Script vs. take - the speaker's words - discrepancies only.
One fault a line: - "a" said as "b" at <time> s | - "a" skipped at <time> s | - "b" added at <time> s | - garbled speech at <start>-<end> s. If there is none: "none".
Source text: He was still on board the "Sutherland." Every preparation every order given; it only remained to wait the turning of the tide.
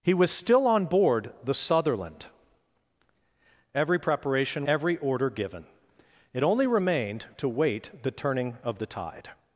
none